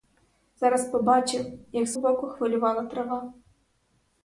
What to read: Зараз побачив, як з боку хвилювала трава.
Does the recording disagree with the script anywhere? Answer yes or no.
no